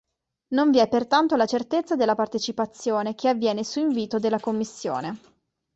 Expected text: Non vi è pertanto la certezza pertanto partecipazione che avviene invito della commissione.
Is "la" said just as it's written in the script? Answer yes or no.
yes